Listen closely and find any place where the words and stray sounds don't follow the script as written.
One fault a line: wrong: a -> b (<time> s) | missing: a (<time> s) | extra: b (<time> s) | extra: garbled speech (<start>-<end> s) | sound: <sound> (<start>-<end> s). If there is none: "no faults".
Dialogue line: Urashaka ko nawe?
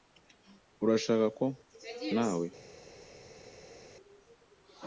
no faults